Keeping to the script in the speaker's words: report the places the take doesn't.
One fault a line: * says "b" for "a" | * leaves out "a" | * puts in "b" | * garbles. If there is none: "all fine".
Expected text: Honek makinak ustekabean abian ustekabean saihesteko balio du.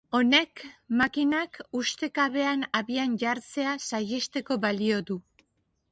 * says "jartzea" for "ustekabean"